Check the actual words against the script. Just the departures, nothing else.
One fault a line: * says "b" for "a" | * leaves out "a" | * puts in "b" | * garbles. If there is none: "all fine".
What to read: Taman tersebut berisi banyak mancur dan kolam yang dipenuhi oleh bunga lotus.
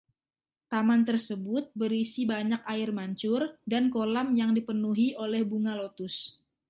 * puts in "air"